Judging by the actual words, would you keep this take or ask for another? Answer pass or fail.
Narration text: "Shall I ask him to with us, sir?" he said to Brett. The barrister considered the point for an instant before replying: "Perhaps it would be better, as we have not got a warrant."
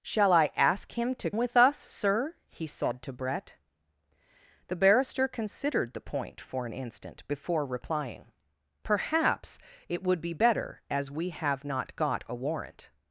pass